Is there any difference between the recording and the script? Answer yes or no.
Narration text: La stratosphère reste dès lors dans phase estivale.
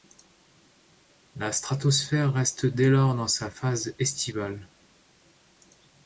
yes